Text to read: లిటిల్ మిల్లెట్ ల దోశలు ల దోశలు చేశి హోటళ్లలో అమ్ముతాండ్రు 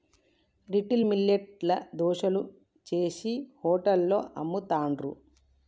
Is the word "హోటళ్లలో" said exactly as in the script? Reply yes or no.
yes